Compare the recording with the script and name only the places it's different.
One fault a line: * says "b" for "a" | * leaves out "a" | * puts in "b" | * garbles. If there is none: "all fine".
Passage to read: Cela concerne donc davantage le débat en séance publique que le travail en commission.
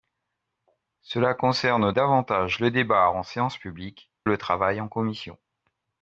* leaves out "donc"
* leaves out "que"